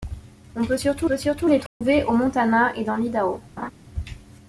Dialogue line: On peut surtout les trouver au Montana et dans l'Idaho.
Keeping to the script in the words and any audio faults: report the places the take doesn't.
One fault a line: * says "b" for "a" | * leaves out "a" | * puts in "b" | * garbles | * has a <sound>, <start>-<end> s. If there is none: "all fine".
* puts in "peut surtout"
* has a dropout, 1.7-1.8 s
* has a laugh, 3.6-3.7 s